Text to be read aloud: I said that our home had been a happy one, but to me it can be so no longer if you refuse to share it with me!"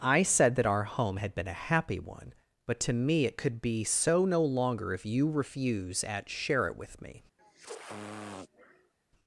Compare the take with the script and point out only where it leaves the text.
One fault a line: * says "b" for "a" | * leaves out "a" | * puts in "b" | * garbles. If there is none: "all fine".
* says "could" for "can"
* says "at" for "to"